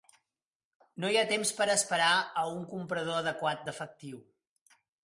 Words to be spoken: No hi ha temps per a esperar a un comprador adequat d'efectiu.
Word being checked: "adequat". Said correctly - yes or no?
yes